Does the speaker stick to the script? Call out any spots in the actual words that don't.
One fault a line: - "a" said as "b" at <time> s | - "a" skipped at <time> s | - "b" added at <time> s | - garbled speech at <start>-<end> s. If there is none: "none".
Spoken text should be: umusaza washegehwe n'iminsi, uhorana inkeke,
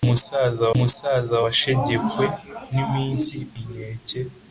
- "umusaza" added at 0.8 s
- "uhorana" skipped at 3.3 s